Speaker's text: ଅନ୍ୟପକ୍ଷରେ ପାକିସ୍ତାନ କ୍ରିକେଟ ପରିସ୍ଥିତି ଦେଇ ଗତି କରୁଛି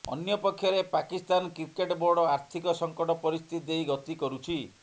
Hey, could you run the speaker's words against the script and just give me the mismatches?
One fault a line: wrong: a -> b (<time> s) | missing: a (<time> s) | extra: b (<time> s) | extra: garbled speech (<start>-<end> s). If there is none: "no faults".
extra: ବୋର୍ଡ ଆର୍ଥିକ ସଙ୍କଟ (2.0 s)